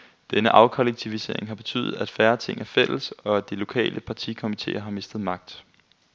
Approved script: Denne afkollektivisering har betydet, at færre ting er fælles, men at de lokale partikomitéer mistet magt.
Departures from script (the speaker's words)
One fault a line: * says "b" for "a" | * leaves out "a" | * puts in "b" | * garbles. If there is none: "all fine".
* says "og" for "men"
* puts in "har"